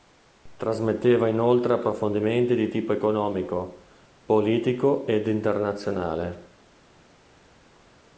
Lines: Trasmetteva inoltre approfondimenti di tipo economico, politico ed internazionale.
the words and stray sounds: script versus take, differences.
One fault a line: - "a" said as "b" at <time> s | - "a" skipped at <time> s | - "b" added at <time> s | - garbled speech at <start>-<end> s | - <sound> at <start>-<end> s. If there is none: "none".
none